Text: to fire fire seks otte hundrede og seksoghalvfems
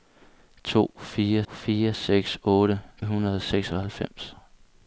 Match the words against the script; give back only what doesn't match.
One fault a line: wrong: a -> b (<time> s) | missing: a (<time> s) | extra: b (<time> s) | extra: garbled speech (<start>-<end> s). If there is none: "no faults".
no faults